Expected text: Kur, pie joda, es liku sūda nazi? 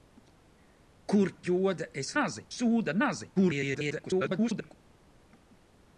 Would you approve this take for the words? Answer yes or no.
no